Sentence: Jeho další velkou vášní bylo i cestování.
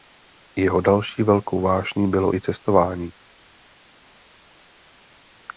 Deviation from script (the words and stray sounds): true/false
false